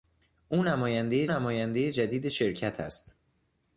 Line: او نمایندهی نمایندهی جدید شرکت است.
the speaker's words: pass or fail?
pass